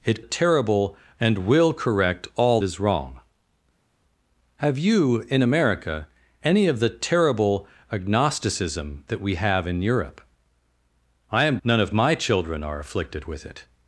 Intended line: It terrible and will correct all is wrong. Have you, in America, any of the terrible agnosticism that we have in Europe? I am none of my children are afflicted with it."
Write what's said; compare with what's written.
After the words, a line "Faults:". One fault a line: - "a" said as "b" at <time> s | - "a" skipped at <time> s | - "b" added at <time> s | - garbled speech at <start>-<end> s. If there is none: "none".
It terrible and will correct all is wrong. Have you, in America, any of the terrible agnosticism that we have in Europe? I am none of my children are afflicted with it."
Faults:
none